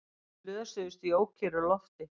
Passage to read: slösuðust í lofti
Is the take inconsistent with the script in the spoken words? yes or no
yes